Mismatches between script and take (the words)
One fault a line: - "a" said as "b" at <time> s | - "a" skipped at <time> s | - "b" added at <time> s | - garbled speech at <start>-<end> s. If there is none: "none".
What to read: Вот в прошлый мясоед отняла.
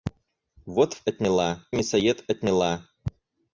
- "прошлый" said as "отняла" at 1.0 s